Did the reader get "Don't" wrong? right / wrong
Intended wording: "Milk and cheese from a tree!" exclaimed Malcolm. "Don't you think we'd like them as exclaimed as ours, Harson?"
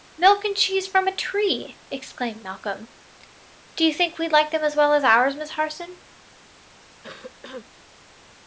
wrong